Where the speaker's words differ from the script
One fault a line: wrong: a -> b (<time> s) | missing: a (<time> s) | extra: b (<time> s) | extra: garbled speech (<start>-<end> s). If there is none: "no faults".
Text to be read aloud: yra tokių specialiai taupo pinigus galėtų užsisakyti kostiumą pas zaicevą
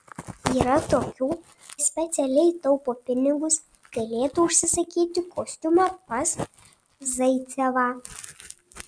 no faults